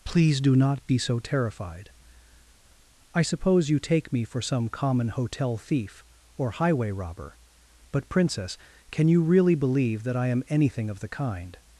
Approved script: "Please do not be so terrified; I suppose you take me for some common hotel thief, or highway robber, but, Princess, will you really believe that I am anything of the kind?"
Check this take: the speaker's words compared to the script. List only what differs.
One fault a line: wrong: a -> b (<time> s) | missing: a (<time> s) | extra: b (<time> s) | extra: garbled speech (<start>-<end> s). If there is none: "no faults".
wrong: will -> can (8.9 s)